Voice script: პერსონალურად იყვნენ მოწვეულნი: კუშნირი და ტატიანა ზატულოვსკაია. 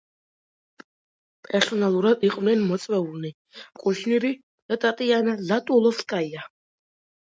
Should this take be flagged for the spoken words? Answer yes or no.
no